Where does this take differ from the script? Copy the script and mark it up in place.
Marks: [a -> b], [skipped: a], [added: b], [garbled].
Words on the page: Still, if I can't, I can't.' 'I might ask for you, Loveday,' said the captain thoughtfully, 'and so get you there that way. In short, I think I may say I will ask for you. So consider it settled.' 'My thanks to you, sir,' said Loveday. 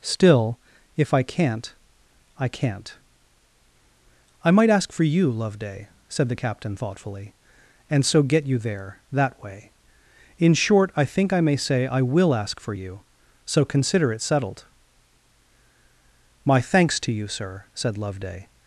Still, if I can't, I can't.' 'I might ask for you, Loveday,' said the captain thoughtfully, 'and so get you there that way. In short, I think I may say I will ask for you. So consider it settled.' 'My thanks to you, sir,' said Loveday.